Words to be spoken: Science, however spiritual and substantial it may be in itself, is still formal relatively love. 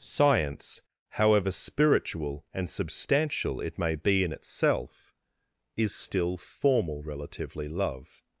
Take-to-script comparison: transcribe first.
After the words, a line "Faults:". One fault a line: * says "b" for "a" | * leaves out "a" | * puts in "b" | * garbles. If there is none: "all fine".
Science, however spiritual and substantial it may be in itself, is still formal relatively love.
Faults:
all fine